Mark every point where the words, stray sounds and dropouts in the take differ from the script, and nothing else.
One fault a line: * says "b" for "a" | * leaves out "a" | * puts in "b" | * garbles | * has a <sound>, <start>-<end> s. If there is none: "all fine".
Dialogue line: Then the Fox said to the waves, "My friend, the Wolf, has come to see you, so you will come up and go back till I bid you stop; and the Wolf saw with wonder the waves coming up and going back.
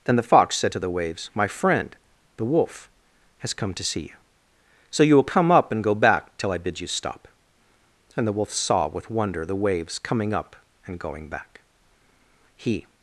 * puts in "He"